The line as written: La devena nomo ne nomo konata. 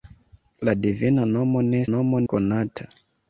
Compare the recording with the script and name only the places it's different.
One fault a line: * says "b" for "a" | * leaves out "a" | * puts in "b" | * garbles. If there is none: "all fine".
all fine